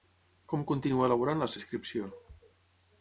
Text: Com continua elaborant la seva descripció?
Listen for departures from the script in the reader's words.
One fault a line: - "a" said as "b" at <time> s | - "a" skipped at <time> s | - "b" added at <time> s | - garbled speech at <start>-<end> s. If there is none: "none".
- "seva" skipped at 1.5 s